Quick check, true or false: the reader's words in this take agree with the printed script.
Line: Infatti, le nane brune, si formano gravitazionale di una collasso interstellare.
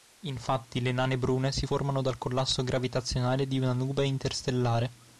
false